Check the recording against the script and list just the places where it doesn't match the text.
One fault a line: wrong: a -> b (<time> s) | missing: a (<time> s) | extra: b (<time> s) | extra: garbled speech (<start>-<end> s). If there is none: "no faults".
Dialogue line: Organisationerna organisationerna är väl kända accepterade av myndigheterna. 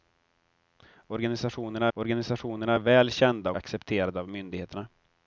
no faults